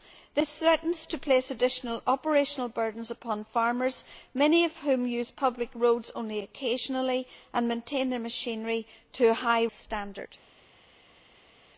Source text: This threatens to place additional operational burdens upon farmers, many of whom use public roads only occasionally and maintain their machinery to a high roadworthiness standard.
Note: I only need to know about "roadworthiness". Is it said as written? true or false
false